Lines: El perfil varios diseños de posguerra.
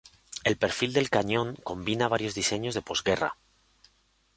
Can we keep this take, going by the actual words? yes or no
no